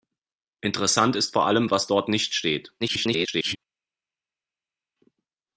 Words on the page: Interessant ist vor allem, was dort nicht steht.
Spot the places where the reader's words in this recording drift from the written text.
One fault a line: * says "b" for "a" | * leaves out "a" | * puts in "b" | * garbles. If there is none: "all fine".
* garbles